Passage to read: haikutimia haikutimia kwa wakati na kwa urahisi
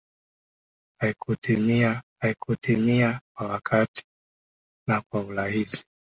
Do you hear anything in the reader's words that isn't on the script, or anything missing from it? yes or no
no